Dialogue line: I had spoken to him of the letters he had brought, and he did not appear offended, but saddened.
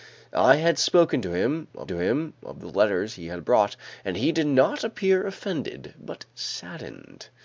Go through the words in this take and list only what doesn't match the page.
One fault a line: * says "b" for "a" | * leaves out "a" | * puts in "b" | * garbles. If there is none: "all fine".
* puts in "to him of"